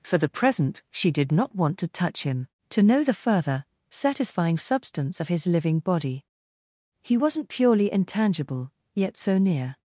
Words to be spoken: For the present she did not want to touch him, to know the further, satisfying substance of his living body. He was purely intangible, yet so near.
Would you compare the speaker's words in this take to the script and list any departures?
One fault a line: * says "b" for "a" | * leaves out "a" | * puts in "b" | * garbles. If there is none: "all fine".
* says "wasn't" for "was"